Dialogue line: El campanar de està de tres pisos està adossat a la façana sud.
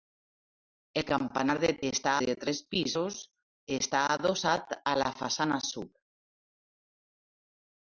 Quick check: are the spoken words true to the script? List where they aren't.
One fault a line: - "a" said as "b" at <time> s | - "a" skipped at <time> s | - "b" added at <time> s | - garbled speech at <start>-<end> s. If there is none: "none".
none